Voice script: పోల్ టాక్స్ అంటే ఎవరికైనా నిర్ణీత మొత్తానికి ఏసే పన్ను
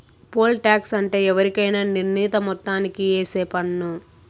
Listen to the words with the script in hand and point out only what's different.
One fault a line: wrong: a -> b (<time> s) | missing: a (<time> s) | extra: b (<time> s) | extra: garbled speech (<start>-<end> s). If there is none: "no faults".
no faults